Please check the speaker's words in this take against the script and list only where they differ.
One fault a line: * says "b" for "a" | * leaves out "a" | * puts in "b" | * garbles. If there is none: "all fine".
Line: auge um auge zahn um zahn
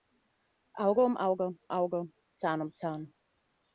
* puts in "auge"